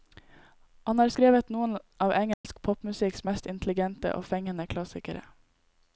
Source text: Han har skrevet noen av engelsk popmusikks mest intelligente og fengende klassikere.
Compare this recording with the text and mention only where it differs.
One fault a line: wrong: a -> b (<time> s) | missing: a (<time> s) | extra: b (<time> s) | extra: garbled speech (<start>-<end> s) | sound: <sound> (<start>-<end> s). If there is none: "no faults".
sound: dropout (2.3-2.4 s)